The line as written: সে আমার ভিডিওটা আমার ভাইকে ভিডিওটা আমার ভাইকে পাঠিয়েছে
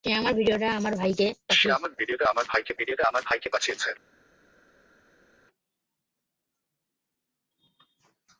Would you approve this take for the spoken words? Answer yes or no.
yes